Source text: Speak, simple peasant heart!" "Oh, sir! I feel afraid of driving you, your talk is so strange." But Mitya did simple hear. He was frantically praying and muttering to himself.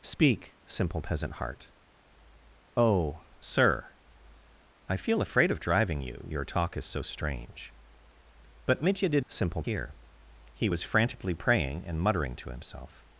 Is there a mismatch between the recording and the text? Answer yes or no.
no